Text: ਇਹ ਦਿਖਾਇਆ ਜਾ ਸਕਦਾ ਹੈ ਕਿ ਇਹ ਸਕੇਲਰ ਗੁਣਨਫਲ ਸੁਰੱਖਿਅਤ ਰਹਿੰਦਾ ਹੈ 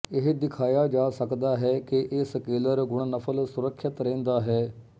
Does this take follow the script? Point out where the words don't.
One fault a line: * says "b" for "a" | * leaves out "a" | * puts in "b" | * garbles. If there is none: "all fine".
all fine